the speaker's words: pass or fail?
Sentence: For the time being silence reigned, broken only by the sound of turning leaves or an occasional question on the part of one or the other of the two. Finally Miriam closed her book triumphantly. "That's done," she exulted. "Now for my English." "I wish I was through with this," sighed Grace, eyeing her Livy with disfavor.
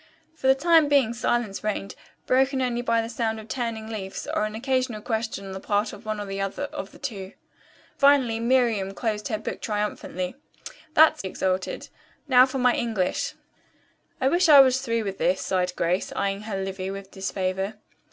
fail